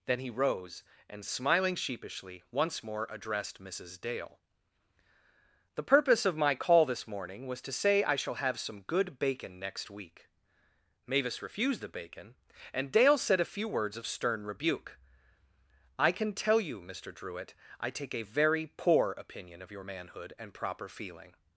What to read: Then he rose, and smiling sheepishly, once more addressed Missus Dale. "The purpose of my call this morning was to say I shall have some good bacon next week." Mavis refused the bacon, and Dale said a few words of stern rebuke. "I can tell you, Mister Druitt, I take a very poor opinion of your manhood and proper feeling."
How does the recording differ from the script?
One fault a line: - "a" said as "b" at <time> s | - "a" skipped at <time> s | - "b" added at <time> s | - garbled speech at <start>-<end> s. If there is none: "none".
none